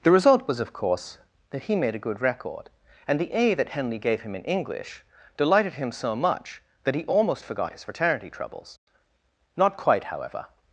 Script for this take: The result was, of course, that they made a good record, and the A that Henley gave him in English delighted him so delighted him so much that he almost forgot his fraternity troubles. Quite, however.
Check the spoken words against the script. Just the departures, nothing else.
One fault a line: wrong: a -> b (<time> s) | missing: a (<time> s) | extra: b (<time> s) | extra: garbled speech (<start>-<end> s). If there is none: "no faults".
wrong: they -> he (1.6 s)
missing: delighted him so (6.1 s)
extra: Not (9.6 s)